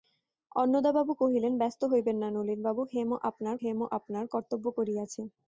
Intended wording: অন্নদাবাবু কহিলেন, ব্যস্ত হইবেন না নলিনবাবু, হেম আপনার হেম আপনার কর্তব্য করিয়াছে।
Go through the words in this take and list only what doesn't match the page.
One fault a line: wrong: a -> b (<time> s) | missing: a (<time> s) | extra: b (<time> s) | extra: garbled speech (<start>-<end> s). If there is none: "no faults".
no faults